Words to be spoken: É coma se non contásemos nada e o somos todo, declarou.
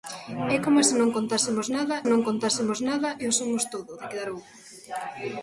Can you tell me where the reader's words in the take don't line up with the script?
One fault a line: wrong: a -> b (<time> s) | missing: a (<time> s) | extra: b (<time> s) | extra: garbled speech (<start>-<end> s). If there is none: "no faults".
extra: non contásemos nada (2.1 s)